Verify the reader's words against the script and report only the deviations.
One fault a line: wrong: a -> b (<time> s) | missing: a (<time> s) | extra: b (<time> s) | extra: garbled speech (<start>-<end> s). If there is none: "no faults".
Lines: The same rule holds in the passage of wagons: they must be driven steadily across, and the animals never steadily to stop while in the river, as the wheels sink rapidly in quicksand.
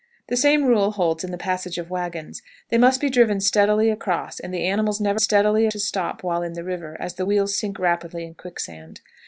no faults